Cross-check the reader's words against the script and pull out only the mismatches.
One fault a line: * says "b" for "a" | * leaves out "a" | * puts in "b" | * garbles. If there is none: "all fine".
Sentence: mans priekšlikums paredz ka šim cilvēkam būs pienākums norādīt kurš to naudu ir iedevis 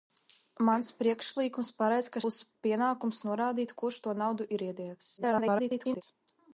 * leaves out "šim cilvēkam"
* garbles